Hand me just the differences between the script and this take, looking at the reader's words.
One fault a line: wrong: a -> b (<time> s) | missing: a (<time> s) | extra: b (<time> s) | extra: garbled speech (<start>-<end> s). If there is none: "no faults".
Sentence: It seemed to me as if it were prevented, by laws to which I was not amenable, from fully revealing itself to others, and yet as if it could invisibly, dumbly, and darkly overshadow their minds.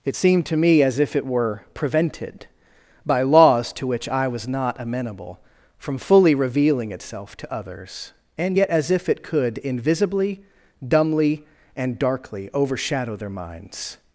no faults